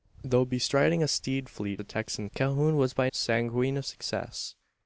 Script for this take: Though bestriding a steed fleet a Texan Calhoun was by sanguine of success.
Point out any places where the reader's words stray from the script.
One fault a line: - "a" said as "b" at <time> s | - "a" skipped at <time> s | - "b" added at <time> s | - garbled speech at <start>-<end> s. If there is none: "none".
none